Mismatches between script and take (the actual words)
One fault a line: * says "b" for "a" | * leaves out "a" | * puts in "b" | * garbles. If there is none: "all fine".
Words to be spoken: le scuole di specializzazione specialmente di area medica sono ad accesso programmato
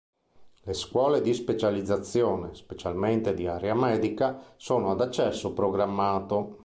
all fine